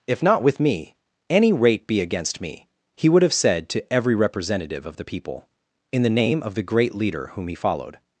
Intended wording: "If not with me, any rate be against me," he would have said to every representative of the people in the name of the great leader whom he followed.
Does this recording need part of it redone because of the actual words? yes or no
no